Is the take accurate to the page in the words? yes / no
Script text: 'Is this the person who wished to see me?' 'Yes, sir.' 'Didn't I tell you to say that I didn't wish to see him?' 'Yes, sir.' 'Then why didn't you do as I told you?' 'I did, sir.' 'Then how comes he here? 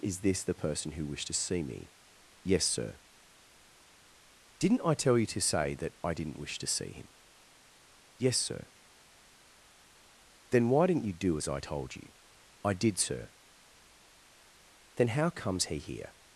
yes